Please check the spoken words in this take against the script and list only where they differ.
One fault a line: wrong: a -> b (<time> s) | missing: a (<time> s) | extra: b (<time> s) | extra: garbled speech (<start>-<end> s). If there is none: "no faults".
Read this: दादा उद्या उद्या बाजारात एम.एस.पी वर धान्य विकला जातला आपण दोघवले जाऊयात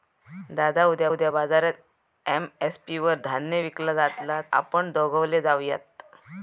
no faults